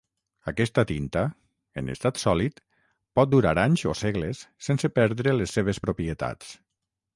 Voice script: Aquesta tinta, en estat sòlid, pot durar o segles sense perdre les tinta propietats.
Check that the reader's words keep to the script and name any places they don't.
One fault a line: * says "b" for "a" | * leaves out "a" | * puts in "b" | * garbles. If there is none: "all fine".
* puts in "anys"
* says "seves" for "tinta"